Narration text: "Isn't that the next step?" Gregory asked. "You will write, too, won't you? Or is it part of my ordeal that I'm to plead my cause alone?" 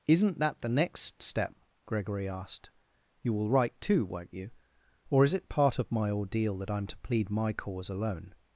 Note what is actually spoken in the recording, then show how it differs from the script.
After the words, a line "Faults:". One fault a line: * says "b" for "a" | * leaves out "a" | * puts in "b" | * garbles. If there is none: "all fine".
"Isn't that the next step?" Gregory asked. "You will write, too, won't you? Or is it part of my ordeal that I'm to plead my cause alone?"
Faults:
all fine